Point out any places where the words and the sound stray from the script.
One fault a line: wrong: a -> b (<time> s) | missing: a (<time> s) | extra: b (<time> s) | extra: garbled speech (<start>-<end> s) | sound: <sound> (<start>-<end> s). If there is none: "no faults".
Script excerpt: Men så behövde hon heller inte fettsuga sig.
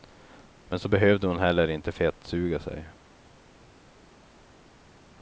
no faults